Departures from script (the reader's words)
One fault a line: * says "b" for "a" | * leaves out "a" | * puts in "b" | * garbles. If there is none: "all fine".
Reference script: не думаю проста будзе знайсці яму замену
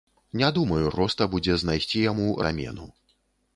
all fine